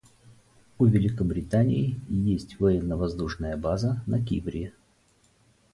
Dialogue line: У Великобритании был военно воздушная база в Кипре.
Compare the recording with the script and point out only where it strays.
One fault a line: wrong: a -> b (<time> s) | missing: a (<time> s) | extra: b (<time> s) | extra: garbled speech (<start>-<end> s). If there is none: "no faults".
wrong: был -> есть (2.1 s)
wrong: в -> на (4.1 s)